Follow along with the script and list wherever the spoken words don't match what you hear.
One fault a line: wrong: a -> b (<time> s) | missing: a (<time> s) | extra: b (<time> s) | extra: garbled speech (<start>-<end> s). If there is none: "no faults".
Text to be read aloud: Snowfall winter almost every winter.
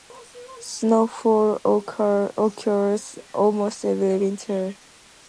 wrong: winter -> occurs (2.4 s)